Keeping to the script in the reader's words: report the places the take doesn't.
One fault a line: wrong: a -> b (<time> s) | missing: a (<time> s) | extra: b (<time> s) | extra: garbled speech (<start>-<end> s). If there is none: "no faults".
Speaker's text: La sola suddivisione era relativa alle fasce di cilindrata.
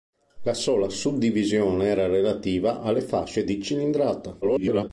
extra: garbled speech (4.4-4.9 s)